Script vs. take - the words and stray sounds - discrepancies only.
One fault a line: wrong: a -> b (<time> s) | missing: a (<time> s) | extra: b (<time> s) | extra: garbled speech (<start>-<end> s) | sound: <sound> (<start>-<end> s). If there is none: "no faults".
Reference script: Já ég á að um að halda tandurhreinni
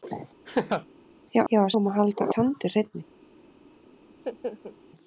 sound: laugh (0.4-0.9 s)
sound: laugh (4.1-4.8 s)